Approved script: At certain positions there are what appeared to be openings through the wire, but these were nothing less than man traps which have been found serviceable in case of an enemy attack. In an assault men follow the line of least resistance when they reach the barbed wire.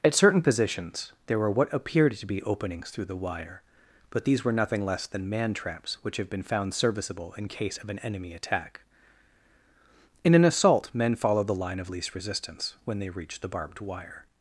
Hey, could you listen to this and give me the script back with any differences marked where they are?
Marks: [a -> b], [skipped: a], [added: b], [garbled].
At certain positions there [are -> were] what appeared to be openings through the wire, but these were nothing less than man traps which have been found serviceable in case of an enemy attack. In an assault men follow the line of least resistance when they reach the barbed wire.